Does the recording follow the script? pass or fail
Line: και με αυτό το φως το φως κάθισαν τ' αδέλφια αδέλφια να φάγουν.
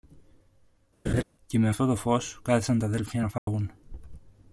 fail